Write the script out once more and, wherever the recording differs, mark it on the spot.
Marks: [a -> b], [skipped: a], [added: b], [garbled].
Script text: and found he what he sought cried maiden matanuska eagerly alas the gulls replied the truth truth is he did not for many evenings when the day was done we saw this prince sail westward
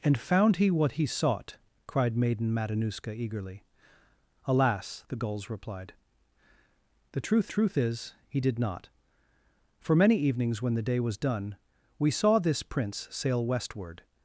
and found he what he sought cried maiden matanuska eagerly alas the gulls replied the truth truth is he did not for many evenings when the day was done we saw this prince sail westward